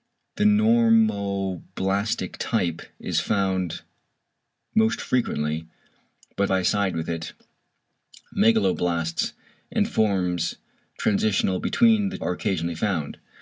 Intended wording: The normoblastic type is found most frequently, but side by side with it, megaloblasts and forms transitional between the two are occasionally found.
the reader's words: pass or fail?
fail